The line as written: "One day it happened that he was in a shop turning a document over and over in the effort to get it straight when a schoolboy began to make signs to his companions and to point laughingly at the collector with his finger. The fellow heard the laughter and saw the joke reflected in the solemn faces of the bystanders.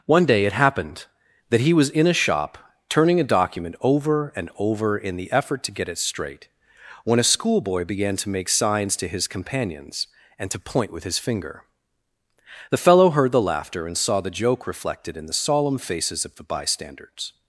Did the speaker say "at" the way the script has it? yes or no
no